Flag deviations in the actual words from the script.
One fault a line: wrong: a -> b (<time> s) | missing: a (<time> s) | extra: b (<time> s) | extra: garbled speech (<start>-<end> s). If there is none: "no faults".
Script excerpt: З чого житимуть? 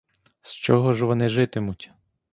extra: ж вони (0.9 s)